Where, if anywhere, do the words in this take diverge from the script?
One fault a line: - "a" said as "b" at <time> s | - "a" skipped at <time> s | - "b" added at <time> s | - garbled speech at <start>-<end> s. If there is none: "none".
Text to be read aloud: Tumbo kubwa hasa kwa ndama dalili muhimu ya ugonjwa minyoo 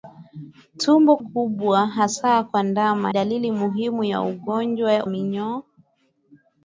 none